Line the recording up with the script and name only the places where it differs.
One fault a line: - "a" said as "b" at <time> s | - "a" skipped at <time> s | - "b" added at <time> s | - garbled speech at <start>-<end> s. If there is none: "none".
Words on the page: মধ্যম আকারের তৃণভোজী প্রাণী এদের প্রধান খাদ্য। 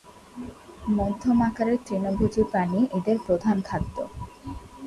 none